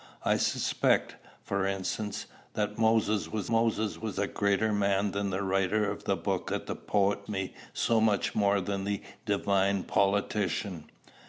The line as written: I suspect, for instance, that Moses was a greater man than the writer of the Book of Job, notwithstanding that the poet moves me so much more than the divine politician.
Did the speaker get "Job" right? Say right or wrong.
wrong